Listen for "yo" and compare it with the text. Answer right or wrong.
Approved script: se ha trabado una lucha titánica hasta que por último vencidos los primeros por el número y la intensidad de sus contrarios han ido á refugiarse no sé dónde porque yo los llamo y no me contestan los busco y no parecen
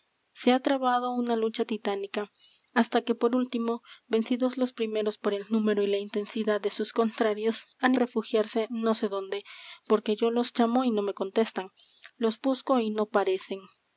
right